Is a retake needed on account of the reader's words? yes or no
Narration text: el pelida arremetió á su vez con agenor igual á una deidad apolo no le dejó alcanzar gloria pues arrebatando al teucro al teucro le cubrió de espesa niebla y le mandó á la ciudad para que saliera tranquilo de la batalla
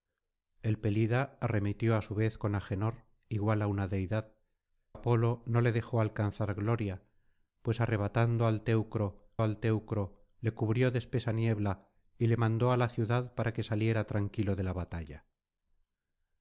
no